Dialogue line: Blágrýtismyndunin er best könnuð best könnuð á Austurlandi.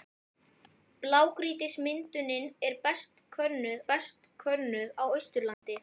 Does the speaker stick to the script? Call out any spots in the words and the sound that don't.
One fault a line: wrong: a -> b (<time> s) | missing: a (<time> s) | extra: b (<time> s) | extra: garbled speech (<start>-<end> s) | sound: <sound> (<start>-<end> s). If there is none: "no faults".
sound: dropout (5.5-5.6 s)